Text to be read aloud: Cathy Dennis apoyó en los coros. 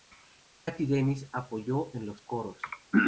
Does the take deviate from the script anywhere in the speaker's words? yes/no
no